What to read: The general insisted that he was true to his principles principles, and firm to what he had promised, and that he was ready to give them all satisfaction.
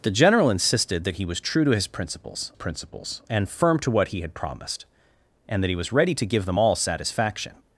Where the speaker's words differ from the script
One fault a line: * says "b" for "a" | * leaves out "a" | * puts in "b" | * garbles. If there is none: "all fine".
all fine